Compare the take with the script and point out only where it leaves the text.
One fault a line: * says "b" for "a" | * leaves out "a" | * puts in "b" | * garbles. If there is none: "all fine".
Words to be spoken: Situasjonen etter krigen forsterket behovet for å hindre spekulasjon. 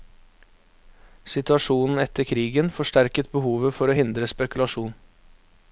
all fine